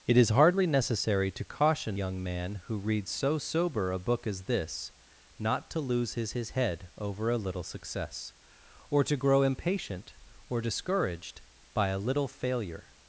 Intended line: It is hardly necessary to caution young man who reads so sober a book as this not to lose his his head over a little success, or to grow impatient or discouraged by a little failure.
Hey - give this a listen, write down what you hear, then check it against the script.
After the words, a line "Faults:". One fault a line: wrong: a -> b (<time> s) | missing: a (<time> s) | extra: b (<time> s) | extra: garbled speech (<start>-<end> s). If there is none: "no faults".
It is hardly necessary to caution young man who reads so sober a book as this not to lose his his head over a little success, or to grow impatient or discouraged by a little failure.
Faults:
no faults